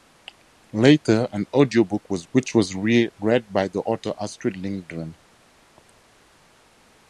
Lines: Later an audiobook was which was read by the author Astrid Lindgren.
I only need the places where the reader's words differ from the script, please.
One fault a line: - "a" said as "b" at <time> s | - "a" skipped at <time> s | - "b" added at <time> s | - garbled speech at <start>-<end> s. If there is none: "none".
none